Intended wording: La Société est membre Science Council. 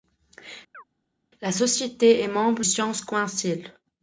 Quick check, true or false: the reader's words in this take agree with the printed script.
true